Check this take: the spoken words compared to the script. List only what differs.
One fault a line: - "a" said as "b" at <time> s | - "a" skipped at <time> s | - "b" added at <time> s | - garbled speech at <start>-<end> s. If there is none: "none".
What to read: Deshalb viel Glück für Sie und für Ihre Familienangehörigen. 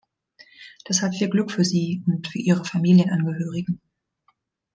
none